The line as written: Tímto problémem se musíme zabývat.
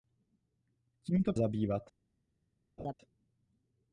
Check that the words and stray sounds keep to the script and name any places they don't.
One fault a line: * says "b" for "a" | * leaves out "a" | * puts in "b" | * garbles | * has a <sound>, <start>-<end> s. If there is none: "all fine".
* leaves out "problémem se musíme"
* has a laugh, 2.8-2.9 s